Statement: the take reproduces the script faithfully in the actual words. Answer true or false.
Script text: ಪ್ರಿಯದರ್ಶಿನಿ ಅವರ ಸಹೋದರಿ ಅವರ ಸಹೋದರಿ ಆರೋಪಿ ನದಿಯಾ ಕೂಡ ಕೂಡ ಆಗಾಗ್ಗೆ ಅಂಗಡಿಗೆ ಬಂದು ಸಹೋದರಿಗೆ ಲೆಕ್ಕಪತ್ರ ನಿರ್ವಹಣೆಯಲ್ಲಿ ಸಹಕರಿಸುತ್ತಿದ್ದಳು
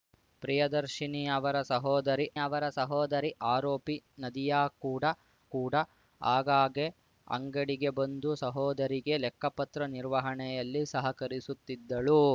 true